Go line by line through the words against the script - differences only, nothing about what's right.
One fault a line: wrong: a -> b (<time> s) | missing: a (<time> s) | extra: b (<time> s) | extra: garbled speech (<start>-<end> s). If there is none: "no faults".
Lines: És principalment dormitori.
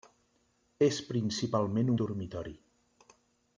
no faults